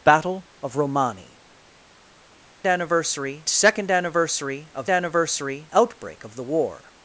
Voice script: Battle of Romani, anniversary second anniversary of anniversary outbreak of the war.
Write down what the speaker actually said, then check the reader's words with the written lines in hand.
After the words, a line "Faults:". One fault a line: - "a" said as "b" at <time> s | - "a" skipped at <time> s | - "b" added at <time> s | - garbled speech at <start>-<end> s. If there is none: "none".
Battle of Romani, anniversary second anniversary of anniversary outbreak of the war.
Faults:
none